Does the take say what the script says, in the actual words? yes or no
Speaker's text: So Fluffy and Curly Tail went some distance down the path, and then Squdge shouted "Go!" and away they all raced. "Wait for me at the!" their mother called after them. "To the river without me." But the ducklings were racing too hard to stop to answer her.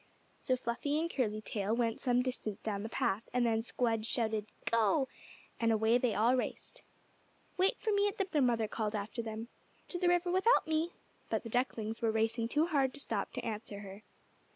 yes